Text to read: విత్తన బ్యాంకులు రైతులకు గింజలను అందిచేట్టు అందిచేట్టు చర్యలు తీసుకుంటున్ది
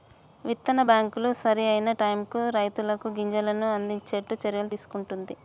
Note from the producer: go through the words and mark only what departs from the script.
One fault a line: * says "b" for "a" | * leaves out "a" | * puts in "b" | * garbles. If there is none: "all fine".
* puts in "సరి అయిన టైముకు"
* leaves out "అందిచేట్టు"